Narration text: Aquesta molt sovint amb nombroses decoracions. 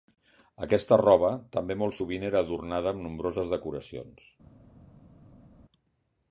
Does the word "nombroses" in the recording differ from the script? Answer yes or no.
no